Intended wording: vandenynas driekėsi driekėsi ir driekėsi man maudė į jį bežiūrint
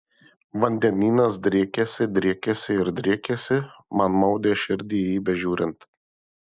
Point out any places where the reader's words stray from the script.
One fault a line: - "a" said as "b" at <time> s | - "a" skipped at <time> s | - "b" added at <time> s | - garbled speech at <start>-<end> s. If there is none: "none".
- "širdį" added at 4.7 s